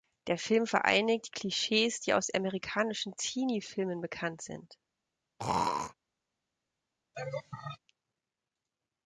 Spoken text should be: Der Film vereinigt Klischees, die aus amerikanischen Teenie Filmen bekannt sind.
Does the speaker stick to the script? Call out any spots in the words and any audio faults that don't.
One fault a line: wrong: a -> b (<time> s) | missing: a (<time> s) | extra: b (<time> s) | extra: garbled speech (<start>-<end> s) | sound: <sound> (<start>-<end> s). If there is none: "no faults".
sound: throat clearing (5.4-5.9 s)
sound: laugh (7.1-7.8 s)